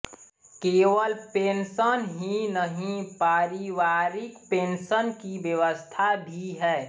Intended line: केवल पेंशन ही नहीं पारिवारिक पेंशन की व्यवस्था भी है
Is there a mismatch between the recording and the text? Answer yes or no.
no